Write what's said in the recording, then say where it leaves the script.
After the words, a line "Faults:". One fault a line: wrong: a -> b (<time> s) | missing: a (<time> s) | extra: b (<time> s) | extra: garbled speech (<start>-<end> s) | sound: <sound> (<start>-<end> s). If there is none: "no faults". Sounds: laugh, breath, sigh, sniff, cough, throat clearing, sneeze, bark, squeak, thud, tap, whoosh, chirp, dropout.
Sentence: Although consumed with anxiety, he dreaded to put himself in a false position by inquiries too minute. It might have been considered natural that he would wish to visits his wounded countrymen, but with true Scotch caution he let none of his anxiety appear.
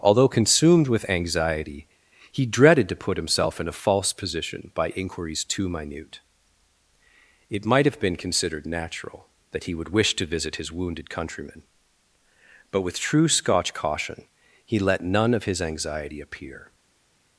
Although consumed with anxiety, he dreaded to put himself in a false position by inquiries too minute. It might have been considered natural that he would wish to visit his wounded countrymen, but with true Scotch caution he let none of his anxiety appear.
Faults:
wrong: visits -> visit (10.2 s)